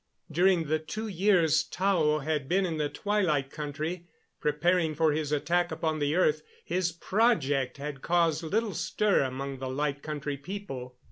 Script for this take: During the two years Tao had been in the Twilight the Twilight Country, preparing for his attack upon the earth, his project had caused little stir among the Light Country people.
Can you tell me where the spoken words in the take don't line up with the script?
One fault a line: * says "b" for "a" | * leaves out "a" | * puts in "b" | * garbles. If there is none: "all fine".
* leaves out "the Twilight"